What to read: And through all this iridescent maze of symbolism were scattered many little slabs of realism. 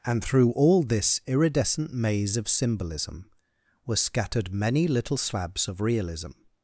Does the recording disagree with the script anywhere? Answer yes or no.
no